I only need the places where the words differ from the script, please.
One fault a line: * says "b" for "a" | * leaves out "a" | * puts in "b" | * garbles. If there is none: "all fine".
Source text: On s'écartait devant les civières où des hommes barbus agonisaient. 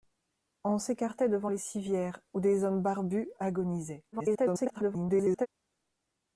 * garbles